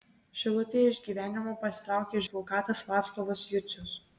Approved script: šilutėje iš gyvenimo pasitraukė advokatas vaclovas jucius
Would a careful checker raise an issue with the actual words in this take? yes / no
no